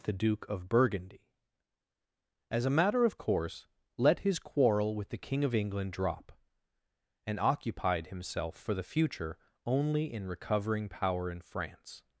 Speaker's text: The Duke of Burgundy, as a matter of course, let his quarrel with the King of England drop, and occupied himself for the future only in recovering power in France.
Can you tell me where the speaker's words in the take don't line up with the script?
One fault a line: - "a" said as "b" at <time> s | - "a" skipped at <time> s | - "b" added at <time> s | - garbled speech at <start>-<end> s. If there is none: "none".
none